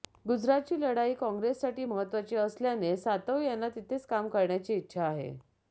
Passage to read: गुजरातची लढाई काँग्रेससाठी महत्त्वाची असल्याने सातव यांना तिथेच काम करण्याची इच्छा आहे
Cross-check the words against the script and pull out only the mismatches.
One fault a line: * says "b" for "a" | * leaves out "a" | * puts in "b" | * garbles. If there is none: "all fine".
all fine